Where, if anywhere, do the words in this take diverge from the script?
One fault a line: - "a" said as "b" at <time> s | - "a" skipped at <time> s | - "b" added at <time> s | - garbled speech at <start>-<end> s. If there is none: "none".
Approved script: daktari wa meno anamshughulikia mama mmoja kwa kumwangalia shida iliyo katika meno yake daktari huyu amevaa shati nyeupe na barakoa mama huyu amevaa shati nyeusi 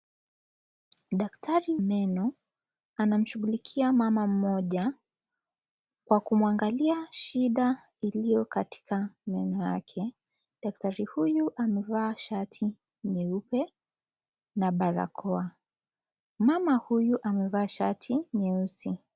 - "wa" skipped at 1.8 s